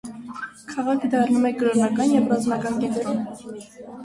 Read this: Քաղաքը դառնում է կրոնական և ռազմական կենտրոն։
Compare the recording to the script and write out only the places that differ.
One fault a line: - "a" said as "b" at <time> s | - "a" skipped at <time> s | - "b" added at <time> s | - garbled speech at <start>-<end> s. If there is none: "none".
none